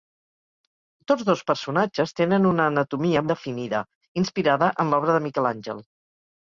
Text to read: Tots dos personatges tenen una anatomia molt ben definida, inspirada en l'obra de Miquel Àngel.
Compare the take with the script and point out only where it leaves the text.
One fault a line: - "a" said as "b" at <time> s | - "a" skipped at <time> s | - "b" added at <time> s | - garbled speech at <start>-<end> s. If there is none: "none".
- "molt ben" skipped at 3.2 s